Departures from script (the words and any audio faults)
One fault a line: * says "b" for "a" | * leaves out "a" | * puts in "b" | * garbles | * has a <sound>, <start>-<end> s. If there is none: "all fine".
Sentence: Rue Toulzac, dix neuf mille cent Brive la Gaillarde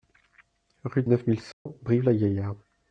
* leaves out "Toulzac dix"
* has a dropout, 1.5-1.7 s